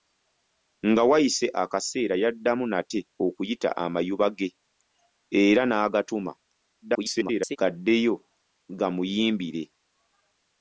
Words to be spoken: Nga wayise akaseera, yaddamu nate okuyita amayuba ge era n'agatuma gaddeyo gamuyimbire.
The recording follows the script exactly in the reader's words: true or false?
false